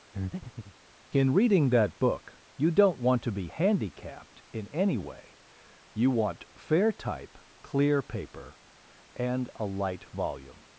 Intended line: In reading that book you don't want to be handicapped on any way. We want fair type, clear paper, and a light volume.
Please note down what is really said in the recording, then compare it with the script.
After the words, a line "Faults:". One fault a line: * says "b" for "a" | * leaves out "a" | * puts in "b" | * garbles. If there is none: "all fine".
In reading that book you don't want to be handicapped in any way. You want fair type, clear paper, and a light volume.
Faults:
* says "in" for "on"
* says "You" for "We"